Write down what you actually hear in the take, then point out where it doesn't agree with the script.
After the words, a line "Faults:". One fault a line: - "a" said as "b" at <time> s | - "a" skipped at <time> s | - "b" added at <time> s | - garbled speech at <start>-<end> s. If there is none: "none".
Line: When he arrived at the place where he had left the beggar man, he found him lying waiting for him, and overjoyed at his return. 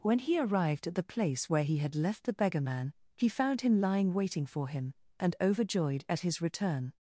When he arrived at the place where he had left the beggar man, he found him lying waiting for him, and overjoyed at his return.
Faults:
none